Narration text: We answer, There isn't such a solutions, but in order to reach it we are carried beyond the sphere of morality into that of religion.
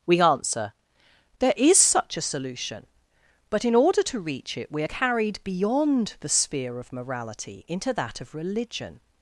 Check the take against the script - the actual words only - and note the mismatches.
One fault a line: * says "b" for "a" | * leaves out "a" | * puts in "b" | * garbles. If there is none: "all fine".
* says "is" for "isn't"
* says "solution" for "solutions"